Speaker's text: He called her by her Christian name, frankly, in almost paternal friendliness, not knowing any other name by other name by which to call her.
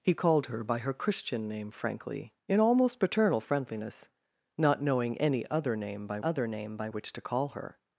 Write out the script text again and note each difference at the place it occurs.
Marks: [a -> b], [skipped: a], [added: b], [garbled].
He called her by her Christian name, frankly, in almost paternal friendliness, not knowing any other name by other name by which to call her.